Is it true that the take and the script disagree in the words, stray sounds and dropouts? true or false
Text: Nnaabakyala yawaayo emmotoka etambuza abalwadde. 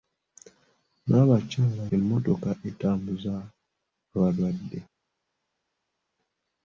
true